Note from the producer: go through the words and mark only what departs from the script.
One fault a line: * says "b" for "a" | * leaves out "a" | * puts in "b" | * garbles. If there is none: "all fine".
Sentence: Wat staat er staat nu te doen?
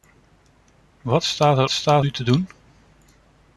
all fine